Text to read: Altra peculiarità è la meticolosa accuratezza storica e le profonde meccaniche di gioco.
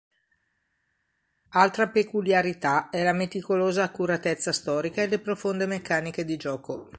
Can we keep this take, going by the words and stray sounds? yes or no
yes